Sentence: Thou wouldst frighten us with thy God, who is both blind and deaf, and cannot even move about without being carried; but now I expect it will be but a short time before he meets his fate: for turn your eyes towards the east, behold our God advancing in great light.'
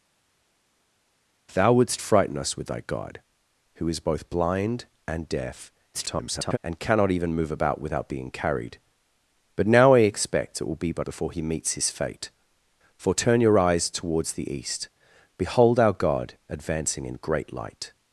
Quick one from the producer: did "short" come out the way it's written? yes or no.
no